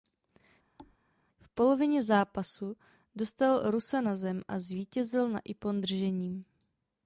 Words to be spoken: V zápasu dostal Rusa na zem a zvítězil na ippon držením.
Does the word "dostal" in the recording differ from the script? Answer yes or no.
no